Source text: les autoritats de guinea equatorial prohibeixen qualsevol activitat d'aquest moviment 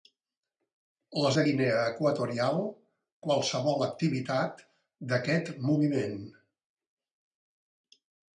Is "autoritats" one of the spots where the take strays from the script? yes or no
yes